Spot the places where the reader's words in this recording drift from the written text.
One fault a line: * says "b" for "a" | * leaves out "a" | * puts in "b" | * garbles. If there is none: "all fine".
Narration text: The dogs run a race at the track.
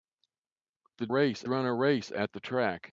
* says "race" for "dogs"